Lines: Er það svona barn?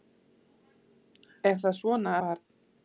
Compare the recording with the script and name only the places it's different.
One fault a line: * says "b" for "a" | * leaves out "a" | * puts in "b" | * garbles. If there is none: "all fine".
all fine